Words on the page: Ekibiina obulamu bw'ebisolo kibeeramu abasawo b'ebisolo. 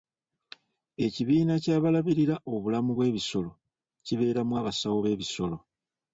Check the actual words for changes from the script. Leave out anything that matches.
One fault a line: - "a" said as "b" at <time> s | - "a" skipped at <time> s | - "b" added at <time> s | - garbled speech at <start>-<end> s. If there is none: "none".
- "ky'abalabirira" added at 1.6 s